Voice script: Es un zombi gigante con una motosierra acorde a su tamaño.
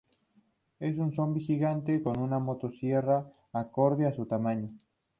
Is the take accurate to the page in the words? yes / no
yes